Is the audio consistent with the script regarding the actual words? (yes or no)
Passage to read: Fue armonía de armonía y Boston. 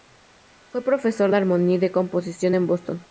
no